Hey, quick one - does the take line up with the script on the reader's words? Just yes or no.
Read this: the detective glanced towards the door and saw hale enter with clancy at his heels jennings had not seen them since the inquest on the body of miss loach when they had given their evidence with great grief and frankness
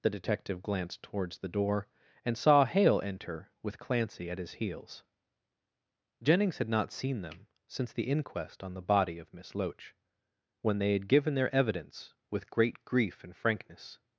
yes